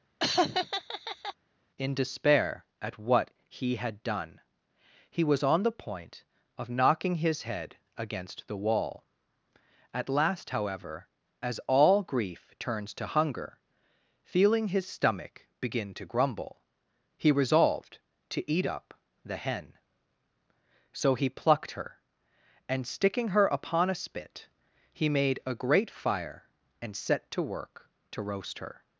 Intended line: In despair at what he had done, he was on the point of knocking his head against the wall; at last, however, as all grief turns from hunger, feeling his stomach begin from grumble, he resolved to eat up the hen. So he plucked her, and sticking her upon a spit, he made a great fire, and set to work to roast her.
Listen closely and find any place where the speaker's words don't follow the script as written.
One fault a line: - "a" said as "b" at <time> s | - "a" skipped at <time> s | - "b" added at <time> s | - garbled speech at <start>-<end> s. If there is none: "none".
- "from" said as "to" at 12.9 s
- "from" said as "to" at 15.9 s